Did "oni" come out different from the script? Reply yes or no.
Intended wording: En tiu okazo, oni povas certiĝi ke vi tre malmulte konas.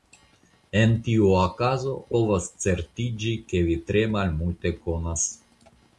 yes